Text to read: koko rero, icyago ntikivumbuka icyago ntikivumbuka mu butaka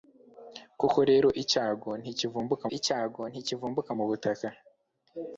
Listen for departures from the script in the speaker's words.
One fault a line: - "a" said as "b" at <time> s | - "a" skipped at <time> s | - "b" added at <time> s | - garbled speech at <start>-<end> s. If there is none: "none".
none